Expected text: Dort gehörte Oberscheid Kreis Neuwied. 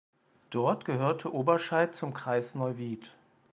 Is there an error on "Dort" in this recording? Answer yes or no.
no